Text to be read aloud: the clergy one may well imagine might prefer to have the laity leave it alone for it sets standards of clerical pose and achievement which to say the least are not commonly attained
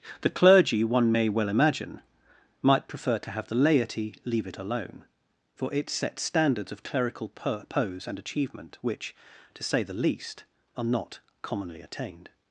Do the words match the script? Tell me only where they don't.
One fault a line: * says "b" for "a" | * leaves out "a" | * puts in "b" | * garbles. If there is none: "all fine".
all fine